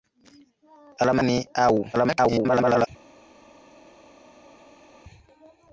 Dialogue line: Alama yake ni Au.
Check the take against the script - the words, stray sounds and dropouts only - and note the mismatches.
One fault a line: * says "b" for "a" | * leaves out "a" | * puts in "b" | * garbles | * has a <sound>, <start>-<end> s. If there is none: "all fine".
* leaves out "yake"
* garbles